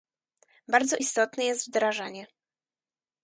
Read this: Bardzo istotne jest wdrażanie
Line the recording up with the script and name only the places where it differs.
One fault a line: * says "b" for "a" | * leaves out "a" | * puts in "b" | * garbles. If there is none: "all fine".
all fine